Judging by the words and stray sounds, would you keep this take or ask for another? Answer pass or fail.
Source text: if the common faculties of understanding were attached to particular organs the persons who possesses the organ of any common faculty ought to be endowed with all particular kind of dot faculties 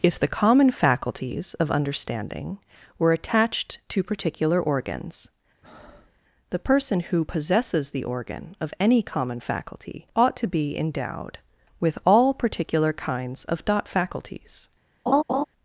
fail